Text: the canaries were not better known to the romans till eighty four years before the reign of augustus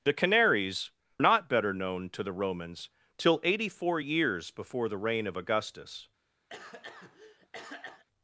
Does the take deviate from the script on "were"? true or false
true